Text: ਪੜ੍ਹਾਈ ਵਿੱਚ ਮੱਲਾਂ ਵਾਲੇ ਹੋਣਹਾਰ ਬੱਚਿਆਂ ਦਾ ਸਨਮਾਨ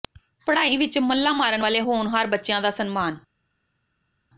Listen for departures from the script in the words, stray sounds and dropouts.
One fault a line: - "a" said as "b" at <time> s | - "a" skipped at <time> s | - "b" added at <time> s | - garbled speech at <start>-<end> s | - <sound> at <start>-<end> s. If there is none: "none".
- "ਮਾਰਨ" added at 1.3 s